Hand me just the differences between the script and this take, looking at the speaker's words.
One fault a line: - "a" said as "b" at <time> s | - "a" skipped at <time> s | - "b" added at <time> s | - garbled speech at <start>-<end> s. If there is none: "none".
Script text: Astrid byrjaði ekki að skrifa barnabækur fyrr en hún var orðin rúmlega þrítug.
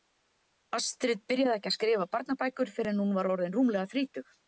none